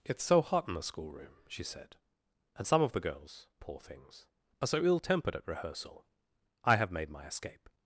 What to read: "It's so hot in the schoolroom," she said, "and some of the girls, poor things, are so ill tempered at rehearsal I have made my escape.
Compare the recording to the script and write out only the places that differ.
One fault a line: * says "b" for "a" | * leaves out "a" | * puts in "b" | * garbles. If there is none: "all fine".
all fine